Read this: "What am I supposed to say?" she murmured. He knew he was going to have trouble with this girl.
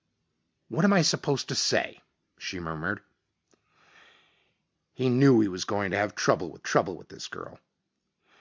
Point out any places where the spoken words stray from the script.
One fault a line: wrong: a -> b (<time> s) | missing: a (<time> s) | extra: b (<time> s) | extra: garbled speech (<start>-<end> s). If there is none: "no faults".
extra: trouble with (6.6 s)